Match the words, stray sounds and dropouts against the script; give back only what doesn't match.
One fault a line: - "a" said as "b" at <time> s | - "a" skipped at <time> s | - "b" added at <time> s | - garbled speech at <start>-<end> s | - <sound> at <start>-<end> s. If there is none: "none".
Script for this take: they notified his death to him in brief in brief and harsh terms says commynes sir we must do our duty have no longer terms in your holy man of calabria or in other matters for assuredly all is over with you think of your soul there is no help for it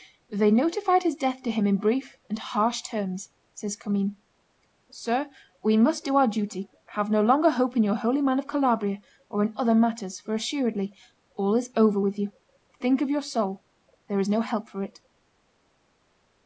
- "in brief" skipped at 2.1 s
- "terms" said as "hope" at 7.5 s